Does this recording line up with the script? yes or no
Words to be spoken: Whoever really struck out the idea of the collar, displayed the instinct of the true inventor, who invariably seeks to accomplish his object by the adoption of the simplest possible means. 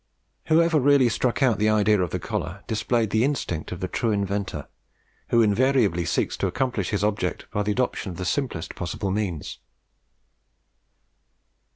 yes